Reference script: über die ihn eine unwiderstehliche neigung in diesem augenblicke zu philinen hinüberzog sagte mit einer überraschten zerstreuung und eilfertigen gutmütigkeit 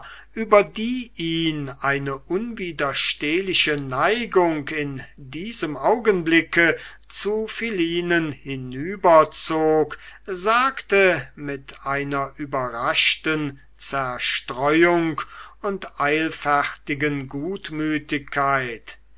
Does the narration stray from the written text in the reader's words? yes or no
no